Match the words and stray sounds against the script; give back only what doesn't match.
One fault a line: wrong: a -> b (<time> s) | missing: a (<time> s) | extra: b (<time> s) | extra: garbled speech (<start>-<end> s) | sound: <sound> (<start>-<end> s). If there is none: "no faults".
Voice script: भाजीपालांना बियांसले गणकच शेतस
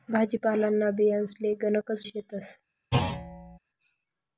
sound: thud (2.9-3.6 s)